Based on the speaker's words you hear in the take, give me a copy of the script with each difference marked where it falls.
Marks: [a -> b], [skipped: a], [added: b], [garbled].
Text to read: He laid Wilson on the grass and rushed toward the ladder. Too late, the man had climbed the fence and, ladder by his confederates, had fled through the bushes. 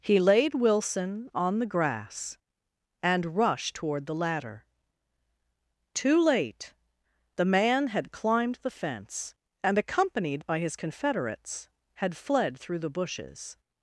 He laid Wilson on the grass and rushed toward the ladder. Too late, the man had climbed the fence and, [ladder -> accompanied] by his confederates, had fled through the bushes.